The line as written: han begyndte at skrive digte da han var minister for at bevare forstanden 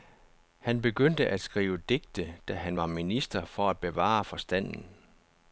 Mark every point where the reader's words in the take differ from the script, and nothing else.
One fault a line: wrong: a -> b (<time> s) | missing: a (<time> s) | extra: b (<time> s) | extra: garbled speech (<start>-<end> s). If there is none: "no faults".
no faults